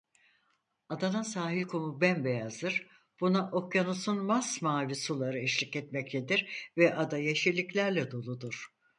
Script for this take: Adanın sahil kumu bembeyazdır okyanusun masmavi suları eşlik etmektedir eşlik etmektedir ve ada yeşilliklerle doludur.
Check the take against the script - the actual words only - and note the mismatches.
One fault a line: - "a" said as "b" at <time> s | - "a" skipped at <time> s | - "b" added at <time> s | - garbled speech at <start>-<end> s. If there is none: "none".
- "buna" added at 3.2 s
- "eşlik etmektedir" skipped at 6.7 s